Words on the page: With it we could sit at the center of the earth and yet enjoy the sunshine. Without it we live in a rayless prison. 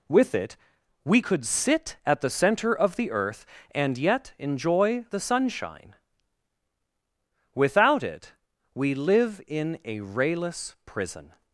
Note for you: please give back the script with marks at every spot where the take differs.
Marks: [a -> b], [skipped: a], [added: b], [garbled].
With it we could sit at the center of the earth and yet enjoy the sunshine. Without it we live in a rayless prison.